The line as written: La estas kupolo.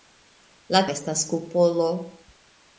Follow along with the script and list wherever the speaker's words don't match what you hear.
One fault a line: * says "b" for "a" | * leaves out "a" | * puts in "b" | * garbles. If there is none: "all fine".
all fine